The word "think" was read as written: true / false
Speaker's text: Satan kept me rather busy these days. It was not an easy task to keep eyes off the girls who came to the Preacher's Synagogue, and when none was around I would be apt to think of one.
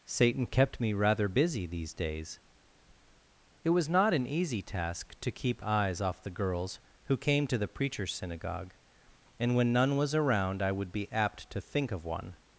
true